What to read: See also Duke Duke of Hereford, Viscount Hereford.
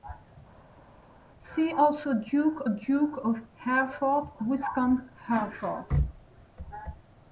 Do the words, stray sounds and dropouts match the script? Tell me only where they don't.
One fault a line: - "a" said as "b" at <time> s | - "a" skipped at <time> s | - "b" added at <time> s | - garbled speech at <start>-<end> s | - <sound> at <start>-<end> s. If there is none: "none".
none